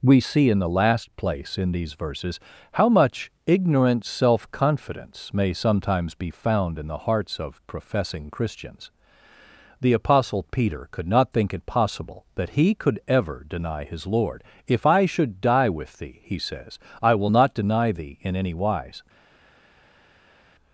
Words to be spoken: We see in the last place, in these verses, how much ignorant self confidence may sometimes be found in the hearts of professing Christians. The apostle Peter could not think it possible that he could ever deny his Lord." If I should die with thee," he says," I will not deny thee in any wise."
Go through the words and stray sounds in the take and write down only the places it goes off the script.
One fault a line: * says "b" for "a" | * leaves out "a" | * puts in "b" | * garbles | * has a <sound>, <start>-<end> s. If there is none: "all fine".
all fine